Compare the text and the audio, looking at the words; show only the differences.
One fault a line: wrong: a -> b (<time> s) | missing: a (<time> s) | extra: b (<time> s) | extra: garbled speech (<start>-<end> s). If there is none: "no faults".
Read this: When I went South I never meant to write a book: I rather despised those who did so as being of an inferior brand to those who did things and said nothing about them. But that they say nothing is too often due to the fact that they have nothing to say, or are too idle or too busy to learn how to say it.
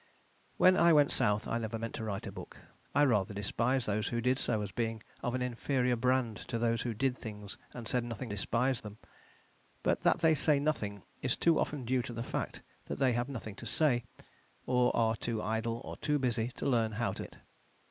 wrong: about -> despised (8.3 s)
missing: say (17.3 s)